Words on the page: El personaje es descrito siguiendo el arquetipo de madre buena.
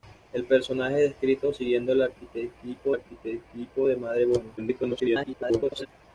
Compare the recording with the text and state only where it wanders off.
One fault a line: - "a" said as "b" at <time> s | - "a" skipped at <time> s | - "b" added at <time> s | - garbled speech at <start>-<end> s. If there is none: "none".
- "arquetipo" added at 2.9 s
- garbled speech at 4.6-5.9 s